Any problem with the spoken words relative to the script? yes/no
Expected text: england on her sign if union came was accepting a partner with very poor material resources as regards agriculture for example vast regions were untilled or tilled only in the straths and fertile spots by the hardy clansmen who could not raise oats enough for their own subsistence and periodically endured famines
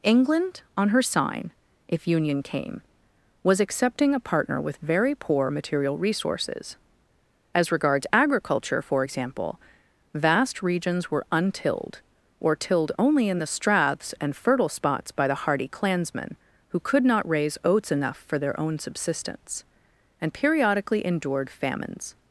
no